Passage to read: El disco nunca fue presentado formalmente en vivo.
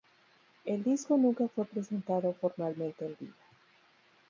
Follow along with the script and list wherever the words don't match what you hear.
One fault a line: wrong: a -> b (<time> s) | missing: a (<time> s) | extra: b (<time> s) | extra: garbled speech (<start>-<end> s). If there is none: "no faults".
no faults